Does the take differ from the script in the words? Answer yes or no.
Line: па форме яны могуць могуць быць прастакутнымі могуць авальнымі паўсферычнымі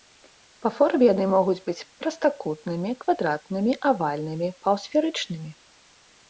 yes